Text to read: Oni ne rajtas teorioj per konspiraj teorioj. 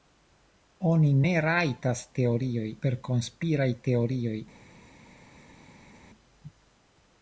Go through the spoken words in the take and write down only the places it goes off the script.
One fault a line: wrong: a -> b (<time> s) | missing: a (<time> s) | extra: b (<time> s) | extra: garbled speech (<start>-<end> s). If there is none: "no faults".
no faults